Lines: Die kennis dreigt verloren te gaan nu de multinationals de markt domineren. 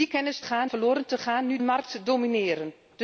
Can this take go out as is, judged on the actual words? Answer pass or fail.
fail